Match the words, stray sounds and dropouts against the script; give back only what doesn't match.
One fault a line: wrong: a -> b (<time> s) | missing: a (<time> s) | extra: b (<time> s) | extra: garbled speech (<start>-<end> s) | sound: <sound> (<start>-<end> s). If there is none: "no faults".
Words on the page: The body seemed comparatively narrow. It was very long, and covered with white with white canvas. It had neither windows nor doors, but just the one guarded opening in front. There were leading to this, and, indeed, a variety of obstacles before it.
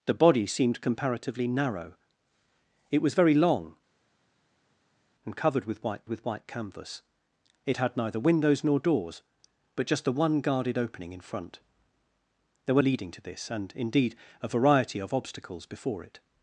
no faults